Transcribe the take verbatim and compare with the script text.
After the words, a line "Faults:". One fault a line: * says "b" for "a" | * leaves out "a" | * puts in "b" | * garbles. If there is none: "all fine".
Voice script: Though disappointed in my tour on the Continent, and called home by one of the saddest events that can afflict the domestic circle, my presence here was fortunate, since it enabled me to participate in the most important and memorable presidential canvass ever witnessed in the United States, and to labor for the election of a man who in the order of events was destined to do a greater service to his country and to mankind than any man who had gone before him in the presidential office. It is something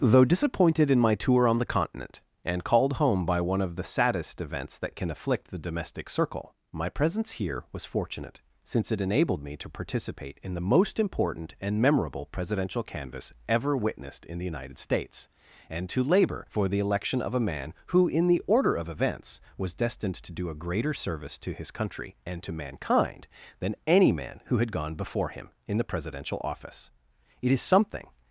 Though disappointed in my tour on the Continent, and called home by one of the saddest events that can afflict the domestic circle, my presence here was fortunate, since it enabled me to participate in the most important and memorable presidential canvass ever witnessed in the United States, and to labor for the election of a man who in the order of events was destined to do a greater service to his country and to mankind than any man who had gone before him in the presidential office. It is something
Faults:
all fine